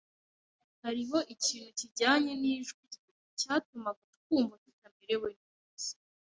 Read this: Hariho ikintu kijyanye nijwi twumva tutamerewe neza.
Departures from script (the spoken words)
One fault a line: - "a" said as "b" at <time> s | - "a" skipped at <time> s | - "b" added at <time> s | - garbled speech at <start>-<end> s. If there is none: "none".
- "rye cyatumaga" added at 2.9 s